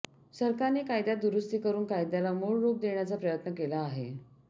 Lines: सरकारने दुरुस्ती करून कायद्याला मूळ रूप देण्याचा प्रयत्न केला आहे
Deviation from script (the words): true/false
true